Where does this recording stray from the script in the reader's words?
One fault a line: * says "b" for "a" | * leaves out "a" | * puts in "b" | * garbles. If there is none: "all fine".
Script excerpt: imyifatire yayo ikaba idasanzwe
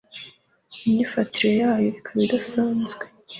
all fine